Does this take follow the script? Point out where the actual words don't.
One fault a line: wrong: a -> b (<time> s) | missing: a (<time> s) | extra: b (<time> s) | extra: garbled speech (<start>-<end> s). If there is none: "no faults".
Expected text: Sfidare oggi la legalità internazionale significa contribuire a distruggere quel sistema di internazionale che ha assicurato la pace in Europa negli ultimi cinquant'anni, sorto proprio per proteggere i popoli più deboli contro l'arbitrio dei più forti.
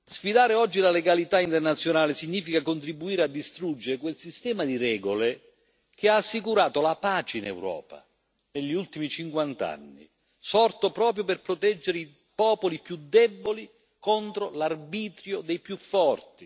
wrong: internazionale -> regole (4.8 s)